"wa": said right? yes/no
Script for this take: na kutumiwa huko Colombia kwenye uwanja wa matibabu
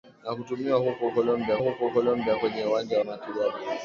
no